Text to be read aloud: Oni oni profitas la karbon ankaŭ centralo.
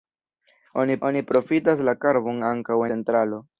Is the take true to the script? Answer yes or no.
yes